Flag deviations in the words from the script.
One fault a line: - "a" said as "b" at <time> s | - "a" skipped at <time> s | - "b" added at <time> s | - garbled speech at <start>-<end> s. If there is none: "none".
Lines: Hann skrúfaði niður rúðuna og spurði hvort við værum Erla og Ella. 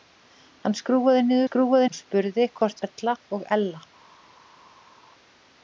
- "rúðuna" said as "skrúfaði" at 1.5 s
- "við værum" skipped at 2.8 s